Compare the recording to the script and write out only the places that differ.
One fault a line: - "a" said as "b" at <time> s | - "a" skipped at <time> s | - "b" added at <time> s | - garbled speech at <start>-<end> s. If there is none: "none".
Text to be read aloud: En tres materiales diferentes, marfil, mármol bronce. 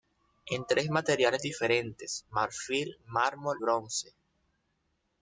none